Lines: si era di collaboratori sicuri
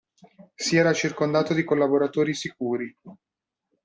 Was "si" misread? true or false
false